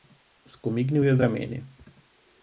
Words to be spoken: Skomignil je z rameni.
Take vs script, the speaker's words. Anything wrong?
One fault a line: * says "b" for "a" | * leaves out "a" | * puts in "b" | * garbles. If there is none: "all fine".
all fine